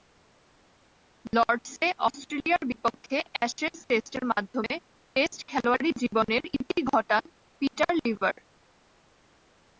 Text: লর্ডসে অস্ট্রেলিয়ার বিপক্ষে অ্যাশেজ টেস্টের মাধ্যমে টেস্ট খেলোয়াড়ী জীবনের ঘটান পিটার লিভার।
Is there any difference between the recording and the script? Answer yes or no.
yes